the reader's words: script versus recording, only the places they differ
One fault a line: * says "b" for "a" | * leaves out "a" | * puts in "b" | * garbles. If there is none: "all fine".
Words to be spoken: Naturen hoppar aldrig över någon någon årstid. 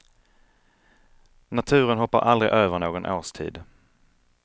* leaves out "någon"